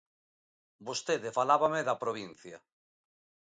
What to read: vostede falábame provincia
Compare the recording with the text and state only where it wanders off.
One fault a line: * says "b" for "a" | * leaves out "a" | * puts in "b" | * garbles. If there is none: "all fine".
* puts in "da"